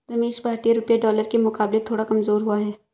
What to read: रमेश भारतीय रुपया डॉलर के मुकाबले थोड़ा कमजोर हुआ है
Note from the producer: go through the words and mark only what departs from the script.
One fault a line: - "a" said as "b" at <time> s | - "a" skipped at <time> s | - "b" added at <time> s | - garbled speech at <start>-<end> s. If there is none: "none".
none